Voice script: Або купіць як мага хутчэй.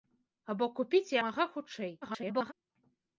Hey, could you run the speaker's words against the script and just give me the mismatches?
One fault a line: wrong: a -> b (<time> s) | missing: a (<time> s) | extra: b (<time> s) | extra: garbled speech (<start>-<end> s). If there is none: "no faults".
missing: як (1.1 s)
extra: garbled speech (2.0-2.5 s)